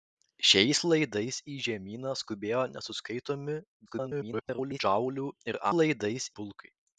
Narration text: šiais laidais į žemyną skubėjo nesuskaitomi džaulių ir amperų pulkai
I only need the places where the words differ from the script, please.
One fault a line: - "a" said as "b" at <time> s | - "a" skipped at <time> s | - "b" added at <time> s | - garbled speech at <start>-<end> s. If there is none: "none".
- garbled speech at 3.9-4.8 s
- "amperų" said as "laidais" at 5.8 s